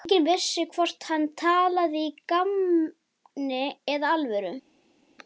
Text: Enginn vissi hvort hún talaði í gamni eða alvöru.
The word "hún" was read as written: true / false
false